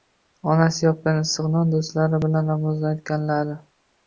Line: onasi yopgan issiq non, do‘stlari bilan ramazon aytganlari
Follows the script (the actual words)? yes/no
yes